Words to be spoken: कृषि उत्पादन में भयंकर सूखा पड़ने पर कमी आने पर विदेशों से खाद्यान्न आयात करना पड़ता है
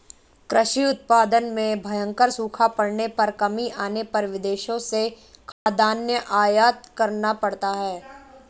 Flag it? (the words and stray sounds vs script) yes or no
yes